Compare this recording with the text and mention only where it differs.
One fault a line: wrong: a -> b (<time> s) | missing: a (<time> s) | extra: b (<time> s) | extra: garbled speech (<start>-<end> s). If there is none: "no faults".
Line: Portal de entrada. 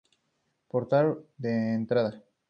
no faults